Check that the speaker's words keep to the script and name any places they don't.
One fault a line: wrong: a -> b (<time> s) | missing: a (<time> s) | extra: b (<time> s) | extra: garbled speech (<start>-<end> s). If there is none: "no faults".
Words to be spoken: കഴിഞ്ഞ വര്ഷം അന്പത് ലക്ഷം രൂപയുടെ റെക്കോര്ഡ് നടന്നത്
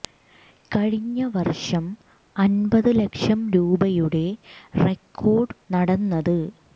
no faults